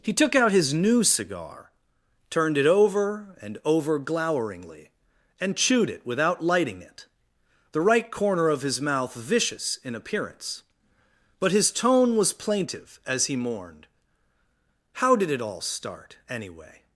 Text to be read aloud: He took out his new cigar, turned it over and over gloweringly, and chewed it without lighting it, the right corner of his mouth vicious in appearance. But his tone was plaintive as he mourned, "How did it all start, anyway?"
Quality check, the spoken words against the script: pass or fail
pass